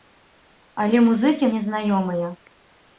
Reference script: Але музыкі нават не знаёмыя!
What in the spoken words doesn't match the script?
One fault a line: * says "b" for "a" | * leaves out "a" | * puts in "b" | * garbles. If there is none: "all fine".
* leaves out "нават"